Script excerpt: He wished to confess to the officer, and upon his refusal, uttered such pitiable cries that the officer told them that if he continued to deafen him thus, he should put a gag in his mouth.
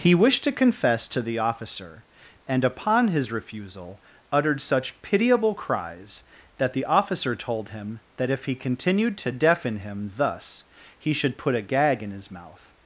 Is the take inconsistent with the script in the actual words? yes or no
yes